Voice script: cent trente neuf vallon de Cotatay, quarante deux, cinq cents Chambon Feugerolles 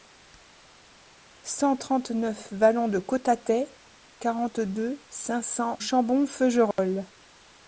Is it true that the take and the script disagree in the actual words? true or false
false